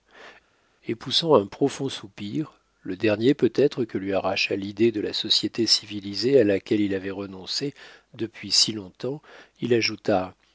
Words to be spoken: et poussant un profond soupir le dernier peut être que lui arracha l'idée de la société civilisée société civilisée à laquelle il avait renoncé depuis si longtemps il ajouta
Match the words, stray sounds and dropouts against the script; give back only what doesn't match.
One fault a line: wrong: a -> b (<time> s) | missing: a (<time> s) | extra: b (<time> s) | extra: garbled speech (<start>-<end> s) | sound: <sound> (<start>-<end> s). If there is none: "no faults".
missing: société civilisée (6.4 s)